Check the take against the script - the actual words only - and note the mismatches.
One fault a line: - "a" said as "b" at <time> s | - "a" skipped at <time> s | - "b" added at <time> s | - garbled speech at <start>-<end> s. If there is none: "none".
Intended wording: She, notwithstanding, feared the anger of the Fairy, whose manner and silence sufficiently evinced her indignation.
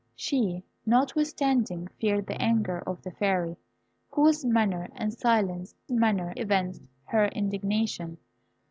- "sufficiently" said as "manner" at 5.9 s